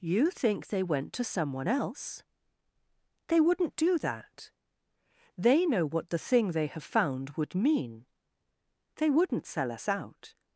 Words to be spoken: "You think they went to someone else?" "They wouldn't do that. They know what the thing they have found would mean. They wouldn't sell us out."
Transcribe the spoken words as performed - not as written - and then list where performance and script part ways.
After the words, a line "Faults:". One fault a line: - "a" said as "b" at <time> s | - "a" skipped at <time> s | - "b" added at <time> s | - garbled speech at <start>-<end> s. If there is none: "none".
"You think they went to someone else?" "They wouldn't do that. They know what the thing they have found would mean. They wouldn't sell us out."
Faults:
none